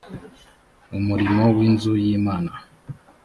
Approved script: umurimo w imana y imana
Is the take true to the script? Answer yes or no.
no